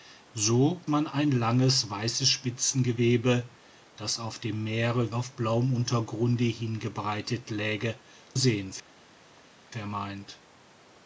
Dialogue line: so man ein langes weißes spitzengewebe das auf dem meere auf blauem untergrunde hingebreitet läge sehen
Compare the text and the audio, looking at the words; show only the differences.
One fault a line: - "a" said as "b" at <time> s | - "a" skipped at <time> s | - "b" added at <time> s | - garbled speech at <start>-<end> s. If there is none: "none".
none